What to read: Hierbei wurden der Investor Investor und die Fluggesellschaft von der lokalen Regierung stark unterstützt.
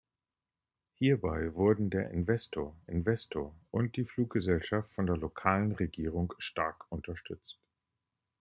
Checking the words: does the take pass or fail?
pass